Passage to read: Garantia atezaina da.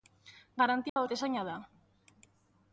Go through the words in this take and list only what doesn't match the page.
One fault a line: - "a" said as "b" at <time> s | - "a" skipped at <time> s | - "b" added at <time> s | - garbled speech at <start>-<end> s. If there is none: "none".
none